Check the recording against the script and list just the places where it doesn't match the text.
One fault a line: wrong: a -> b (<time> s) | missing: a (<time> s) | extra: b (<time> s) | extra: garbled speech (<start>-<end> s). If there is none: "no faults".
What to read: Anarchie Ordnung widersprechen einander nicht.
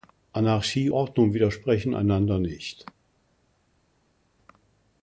no faults